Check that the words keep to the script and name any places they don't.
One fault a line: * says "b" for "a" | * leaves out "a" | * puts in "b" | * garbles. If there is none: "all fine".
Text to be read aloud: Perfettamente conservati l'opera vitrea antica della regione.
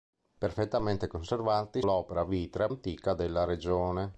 all fine